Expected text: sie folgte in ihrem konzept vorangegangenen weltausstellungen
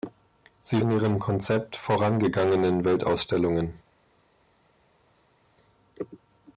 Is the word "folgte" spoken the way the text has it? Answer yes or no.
no